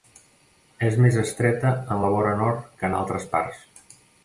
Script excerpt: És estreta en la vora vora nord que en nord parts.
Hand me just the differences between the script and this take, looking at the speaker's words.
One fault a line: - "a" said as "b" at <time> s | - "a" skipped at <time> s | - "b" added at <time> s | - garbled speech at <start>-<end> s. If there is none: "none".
- "més" added at 1.1 s
- "vora" skipped at 2.4 s
- "nord" said as "altres" at 3.0 s